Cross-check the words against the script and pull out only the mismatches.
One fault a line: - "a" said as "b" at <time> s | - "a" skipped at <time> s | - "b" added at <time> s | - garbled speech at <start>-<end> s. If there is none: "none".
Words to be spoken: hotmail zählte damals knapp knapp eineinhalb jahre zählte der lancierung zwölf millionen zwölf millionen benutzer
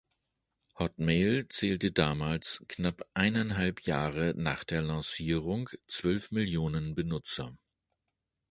- "knapp" skipped at 3.1 s
- "zählte" said as "nach" at 4.4 s
- "zwölf millionen" skipped at 6.9 s